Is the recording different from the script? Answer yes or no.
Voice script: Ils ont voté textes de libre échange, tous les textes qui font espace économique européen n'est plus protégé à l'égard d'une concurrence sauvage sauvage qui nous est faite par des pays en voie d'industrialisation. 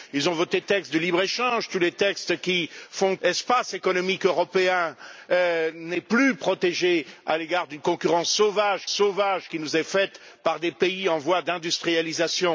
no